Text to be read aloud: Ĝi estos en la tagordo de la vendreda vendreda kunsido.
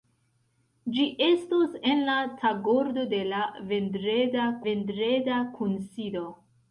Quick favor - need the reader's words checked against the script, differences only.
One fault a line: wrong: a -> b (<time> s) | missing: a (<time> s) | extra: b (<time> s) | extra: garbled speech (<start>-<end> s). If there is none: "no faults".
no faults